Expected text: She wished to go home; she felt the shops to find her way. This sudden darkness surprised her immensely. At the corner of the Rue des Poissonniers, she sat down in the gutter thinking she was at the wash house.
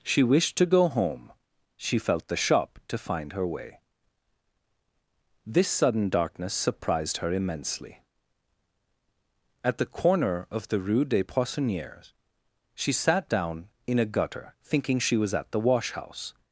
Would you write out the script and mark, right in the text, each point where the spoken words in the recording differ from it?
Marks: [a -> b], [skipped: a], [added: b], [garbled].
She wished to go home; she felt the [shops -> shop] to find her way. This sudden darkness surprised her immensely. At the corner of the Rue des Poissonniers, she sat down in [the -> a] gutter thinking she was at the wash house.